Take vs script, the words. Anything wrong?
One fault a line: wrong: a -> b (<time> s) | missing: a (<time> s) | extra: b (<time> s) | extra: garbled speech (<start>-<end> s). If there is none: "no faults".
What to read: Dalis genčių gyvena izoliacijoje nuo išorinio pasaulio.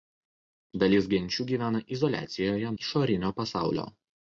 missing: nuo (2.7 s)